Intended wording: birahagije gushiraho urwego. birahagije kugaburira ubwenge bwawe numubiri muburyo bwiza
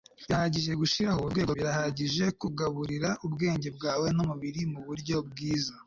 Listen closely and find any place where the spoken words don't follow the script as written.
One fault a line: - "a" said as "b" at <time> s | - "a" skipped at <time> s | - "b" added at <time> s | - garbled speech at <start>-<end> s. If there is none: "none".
none